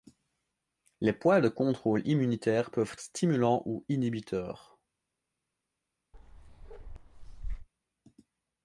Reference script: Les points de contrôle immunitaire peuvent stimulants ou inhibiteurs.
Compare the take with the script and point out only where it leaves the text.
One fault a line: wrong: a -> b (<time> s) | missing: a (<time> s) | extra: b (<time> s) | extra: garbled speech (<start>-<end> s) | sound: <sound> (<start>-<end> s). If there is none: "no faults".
sound: bark (6.1-7.7 s)